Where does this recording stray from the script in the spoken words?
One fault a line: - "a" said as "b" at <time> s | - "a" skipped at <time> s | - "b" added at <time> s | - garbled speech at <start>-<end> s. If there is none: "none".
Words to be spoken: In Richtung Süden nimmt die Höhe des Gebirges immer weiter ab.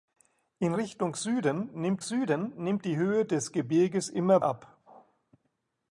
- "Süden nimmt" added at 2.0 s
- "weiter" skipped at 4.4 s